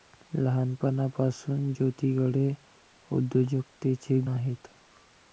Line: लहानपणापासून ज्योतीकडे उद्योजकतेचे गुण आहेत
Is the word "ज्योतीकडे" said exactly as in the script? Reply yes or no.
yes